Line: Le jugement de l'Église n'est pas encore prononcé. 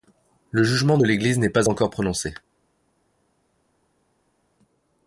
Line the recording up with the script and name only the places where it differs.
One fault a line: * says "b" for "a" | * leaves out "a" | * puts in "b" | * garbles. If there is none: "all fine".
all fine